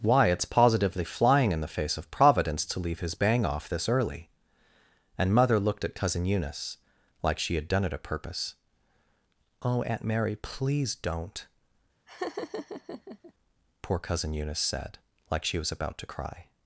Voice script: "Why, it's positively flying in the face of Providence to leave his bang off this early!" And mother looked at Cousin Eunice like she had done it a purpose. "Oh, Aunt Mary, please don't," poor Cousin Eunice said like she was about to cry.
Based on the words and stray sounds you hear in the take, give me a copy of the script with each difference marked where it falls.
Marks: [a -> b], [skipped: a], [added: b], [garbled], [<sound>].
"Why, it's positively flying in the face of Providence to leave his bang off this early!" And mother looked at Cousin Eunice like she had done it a purpose. "Oh, Aunt Mary, please don't," [laugh] poor Cousin Eunice said like she was about to cry.